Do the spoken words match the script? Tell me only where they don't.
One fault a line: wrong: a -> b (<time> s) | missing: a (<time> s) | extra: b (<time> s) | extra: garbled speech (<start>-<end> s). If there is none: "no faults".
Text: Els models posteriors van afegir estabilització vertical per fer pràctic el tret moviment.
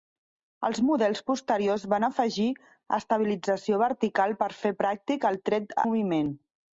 no faults